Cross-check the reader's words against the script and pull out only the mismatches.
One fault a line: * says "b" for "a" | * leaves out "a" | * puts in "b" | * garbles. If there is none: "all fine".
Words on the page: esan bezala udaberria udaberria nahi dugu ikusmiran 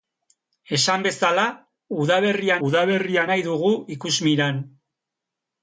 all fine